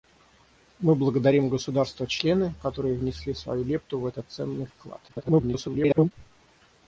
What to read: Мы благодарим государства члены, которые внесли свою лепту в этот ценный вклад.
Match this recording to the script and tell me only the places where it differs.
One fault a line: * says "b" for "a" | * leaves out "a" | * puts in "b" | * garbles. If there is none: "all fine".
* garbles